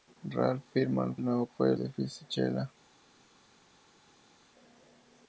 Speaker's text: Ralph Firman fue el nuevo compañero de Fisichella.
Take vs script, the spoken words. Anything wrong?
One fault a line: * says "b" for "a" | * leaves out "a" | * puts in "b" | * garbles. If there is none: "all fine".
* leaves out "fue"
* says "fue" for "compañero"